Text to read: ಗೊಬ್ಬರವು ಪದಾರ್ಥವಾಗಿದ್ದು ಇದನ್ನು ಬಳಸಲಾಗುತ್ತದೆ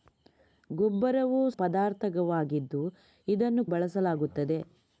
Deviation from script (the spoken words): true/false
false